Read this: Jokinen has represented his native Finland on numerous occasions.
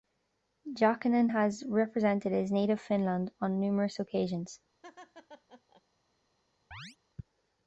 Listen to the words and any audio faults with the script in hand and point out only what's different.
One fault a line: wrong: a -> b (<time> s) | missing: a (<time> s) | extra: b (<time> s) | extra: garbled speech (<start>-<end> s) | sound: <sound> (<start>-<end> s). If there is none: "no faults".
sound: laugh (4.8-5.8 s)
sound: chirp (6.7-7.0 s)